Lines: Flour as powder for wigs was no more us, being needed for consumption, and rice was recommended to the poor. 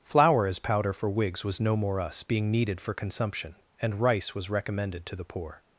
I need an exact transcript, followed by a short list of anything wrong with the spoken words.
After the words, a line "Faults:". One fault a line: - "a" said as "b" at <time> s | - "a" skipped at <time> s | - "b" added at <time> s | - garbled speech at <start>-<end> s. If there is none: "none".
Flour as powder for wigs was no more us, being needed for consumption, and rice was recommended to the poor.
Faults:
none